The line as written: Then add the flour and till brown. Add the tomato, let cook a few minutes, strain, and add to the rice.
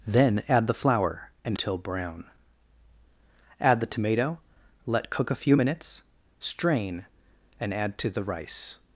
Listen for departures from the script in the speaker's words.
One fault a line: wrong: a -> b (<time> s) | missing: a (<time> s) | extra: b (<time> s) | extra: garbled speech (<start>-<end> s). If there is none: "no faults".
no faults